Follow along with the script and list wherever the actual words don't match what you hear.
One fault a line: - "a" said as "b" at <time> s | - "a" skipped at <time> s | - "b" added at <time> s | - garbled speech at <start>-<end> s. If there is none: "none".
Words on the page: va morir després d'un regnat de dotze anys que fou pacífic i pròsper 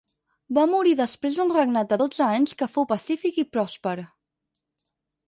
none